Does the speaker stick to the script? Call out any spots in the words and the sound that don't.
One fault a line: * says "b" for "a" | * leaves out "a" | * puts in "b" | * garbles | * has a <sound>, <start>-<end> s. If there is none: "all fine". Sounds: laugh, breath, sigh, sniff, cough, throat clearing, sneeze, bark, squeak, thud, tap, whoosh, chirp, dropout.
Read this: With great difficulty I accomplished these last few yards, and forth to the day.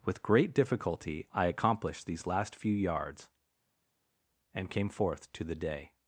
* puts in "came"